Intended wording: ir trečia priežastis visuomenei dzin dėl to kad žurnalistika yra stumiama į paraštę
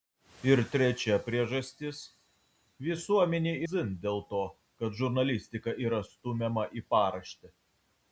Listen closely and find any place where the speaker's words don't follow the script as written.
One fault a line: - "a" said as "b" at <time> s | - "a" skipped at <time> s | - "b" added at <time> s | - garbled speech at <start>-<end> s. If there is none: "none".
none